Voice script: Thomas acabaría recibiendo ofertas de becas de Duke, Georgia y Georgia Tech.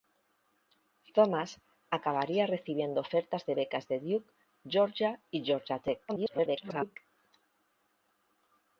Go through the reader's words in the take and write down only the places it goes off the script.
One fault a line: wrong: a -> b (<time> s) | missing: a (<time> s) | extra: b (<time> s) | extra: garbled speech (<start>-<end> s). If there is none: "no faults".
extra: garbled speech (6.1-7.0 s)